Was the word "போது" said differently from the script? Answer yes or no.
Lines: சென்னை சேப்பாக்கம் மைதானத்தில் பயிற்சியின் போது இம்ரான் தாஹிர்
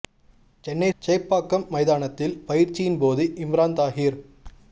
no